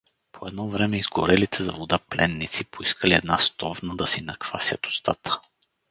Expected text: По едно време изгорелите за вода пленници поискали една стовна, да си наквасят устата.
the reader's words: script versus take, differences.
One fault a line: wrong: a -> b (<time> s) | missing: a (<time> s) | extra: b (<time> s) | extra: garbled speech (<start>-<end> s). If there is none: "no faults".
no faults